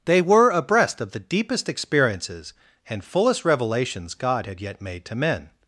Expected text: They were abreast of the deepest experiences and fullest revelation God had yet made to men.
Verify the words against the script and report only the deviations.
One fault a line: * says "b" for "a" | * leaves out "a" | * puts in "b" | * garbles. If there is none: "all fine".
* says "revelations" for "revelation"